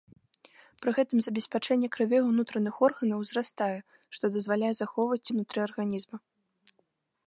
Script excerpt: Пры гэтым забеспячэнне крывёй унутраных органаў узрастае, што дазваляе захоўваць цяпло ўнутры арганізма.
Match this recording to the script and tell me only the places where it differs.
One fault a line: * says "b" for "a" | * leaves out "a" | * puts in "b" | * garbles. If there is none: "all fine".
* leaves out "цяпло"